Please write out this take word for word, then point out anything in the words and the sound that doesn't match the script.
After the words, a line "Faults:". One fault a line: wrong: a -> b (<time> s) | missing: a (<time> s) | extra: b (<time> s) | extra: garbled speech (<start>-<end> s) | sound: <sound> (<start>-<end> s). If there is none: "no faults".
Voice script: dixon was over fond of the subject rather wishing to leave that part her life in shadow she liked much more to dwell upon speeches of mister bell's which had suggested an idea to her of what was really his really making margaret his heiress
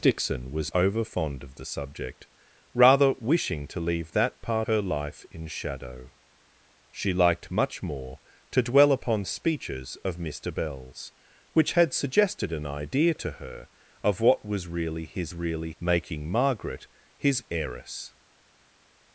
dixon was over fond of the subject rather wishing to leave that part her life in shadow she liked much more to dwell upon speeches of mister bell's which had suggested an idea to her of what was really his really making margaret his heiress
Faults:
no faults